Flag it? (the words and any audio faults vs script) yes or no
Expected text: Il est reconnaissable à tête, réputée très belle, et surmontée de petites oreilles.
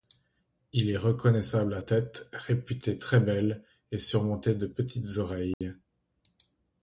yes